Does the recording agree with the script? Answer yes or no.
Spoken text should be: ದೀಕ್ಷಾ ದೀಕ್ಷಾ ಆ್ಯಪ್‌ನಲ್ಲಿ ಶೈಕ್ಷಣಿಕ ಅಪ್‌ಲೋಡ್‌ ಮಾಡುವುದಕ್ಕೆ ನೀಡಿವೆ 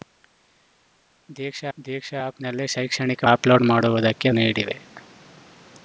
yes